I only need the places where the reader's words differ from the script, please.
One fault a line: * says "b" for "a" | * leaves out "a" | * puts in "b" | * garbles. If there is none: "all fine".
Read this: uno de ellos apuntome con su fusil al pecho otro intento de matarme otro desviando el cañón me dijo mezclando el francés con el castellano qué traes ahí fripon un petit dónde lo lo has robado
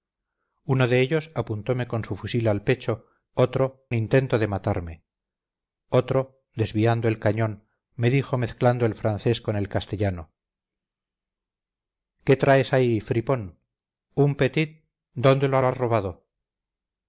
all fine